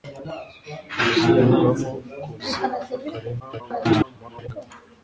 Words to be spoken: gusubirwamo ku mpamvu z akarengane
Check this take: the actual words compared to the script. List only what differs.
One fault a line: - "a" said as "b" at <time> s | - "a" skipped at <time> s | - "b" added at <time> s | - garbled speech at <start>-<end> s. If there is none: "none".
- "mpamvu" skipped at 2.3 s
- garbled speech at 3.4-4.5 s